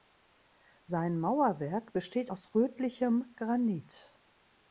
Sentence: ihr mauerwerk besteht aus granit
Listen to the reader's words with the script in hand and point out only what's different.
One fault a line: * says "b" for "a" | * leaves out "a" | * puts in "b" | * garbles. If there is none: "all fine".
* says "sein" for "ihr"
* puts in "rötlichem"